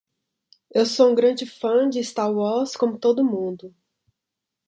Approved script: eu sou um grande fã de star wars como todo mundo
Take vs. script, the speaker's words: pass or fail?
pass